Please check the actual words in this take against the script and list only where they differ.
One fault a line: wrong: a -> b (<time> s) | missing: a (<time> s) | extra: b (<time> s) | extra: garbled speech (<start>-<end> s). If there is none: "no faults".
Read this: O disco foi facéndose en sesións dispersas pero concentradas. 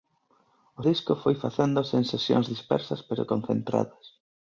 no faults